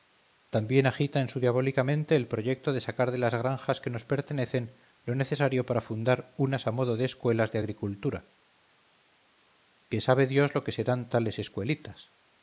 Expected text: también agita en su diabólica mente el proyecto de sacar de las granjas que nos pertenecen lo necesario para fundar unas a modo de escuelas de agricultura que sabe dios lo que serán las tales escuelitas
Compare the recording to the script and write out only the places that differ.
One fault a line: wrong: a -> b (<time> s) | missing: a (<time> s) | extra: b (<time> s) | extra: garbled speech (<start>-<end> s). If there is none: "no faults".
missing: las (11.1 s)